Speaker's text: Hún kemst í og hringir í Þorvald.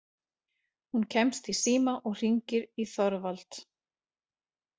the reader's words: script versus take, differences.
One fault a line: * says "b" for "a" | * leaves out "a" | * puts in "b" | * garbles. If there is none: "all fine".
* puts in "síma"